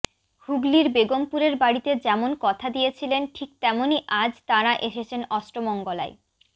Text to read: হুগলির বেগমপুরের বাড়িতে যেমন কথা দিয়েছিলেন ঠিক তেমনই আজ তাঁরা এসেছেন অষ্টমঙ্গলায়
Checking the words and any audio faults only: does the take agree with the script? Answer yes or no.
yes